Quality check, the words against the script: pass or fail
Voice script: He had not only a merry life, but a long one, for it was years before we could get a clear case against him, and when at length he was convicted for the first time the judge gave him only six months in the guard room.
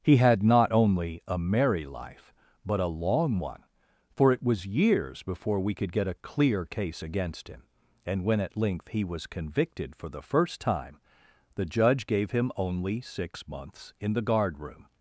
pass